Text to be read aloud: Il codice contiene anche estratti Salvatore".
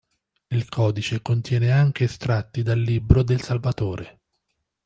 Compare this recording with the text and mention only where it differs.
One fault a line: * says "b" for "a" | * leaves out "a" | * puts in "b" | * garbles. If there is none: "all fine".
* puts in "dal Libro del"